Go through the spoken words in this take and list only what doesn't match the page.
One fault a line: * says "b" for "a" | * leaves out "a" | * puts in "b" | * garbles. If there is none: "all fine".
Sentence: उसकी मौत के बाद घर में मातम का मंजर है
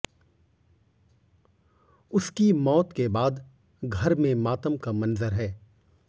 all fine